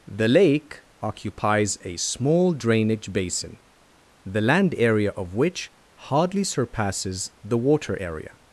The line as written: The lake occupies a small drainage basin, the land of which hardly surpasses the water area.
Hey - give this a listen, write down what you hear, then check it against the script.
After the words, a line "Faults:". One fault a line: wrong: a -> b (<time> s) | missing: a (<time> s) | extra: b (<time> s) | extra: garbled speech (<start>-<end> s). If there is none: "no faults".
The lake occupies a small drainage basin, the land area of which hardly surpasses the water area.
Faults:
extra: area (4.8 s)